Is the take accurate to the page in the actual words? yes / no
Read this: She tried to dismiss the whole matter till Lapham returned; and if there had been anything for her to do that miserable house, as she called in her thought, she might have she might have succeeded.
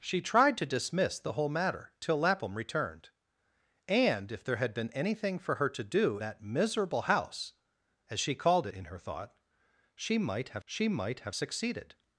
yes